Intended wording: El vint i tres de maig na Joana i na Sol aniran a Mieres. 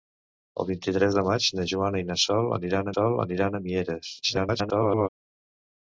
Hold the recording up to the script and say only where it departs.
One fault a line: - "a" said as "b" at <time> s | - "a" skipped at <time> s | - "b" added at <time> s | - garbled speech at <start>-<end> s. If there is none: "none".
- "Sol aniran" added at 2.9 s
- garbled speech at 4.2-5.1 s